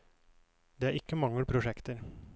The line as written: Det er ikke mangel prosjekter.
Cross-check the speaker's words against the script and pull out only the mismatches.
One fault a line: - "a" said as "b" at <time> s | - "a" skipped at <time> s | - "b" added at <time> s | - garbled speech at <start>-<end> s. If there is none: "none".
none